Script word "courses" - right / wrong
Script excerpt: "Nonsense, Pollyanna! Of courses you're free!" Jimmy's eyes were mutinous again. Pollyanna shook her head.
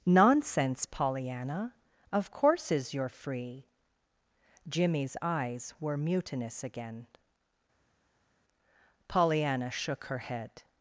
right